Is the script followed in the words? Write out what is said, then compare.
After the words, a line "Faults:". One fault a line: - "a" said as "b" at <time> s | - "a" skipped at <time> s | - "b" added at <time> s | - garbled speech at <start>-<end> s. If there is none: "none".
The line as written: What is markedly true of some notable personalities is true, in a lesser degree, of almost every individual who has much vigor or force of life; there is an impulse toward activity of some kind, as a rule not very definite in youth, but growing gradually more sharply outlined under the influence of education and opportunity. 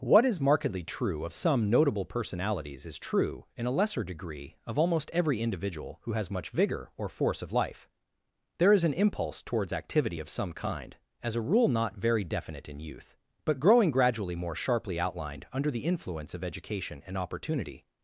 What is markedly true of some notable personalities is true, in a lesser degree, of almost every individual who has much vigor or force of life; there is an impulse towards activity of some kind, as a rule not very definite in youth, but growing gradually more sharply outlined under the influence of education and opportunity.
Faults:
- "toward" said as "towards" at 9.4 s